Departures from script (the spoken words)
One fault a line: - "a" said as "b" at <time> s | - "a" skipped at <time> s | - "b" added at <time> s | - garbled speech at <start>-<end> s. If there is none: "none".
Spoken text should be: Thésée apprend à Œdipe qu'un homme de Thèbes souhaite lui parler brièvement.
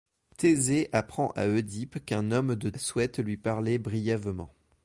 - "Thèbes" skipped at 2.7 s